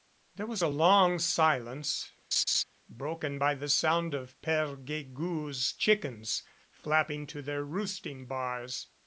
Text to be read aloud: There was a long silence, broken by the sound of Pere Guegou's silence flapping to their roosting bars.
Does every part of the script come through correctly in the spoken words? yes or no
no